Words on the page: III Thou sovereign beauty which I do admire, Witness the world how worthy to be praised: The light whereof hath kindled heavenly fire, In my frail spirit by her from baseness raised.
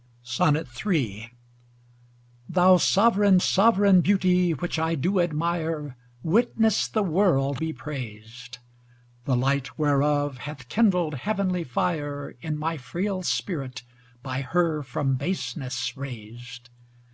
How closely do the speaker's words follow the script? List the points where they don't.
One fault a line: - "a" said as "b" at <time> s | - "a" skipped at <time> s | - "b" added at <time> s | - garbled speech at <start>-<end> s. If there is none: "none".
- "sovereign" added at 3.4 s
- "how worthy to" skipped at 7.6 s